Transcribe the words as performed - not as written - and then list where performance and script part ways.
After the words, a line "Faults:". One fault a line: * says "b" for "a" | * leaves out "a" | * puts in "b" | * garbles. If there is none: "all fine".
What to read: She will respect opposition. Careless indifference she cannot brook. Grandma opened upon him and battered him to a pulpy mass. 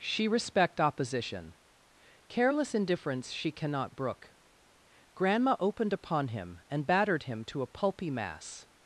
She respect opposition. Careless indifference she cannot brook. Grandma opened upon him and battered him to a pulpy mass.
Faults:
* leaves out "will"